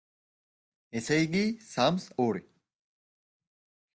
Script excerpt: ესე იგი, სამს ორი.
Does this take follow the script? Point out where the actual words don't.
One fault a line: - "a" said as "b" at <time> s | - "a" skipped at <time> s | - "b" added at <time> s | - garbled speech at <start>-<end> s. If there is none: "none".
none